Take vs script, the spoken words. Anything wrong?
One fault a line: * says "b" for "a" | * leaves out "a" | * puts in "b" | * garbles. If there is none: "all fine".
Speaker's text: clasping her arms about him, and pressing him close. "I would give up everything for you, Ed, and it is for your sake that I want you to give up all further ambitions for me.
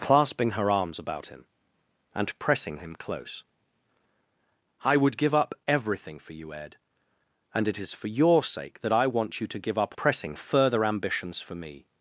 * says "pressing" for "all"